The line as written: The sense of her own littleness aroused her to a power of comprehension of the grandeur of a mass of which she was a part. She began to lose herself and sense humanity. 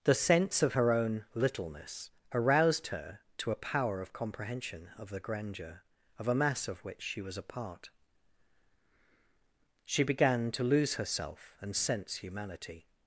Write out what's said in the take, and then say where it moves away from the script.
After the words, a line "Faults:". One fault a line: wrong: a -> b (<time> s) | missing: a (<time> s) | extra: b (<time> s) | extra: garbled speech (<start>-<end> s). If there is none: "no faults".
The sense of her own littleness aroused her to a power of comprehension of the grandeur of a mass of which she was a part. She began to lose herself and sense humanity.
Faults:
no faults